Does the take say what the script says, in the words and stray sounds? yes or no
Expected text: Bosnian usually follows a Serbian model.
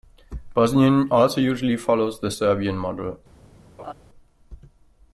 no